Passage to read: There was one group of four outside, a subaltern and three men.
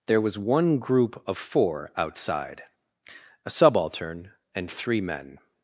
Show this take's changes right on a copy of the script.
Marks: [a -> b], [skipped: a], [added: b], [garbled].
There was one group of four outside, a subaltern and three men.